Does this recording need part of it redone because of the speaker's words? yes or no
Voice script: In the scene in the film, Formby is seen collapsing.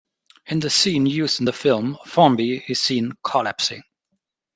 yes